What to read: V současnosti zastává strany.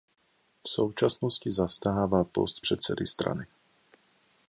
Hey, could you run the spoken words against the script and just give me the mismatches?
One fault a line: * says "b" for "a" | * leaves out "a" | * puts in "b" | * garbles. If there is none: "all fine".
* puts in "post předsedy"